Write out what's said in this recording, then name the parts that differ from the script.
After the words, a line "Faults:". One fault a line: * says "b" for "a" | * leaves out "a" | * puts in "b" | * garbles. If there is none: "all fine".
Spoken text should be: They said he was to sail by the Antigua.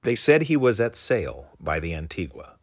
They said he was at sail by the Antigua.
Faults:
* says "at" for "to"